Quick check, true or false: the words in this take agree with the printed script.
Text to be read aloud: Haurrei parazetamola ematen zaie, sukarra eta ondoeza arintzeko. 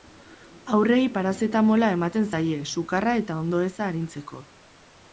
true